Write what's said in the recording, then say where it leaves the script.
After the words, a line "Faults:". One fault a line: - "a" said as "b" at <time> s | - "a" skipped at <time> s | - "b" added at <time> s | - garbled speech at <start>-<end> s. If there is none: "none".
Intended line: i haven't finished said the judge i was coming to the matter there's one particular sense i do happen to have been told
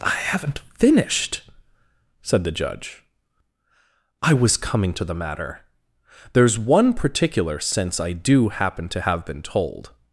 i haven't finished said the judge i was coming to the matter there's one particular sense i do happen to have been told
Faults:
none